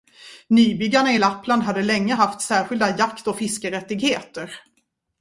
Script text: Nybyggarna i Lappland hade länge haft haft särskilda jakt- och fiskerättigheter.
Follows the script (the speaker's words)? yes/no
no